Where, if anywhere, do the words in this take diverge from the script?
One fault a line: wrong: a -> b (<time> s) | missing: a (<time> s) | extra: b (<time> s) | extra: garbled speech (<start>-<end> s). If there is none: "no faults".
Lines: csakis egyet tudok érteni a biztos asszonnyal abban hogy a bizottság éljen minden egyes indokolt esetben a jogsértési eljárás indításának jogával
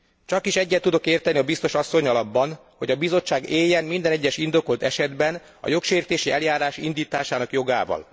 no faults